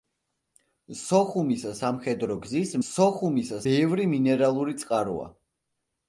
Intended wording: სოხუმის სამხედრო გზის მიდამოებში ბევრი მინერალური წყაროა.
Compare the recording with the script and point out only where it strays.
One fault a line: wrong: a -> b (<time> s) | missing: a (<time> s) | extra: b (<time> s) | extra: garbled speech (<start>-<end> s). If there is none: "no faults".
wrong: მიდამოებში -> სოხუმის (2.9 s)